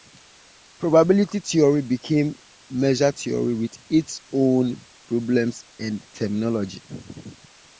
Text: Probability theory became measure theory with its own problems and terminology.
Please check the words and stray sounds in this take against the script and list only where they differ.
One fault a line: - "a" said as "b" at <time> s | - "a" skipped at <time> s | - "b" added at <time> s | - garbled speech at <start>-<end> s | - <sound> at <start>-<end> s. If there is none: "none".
none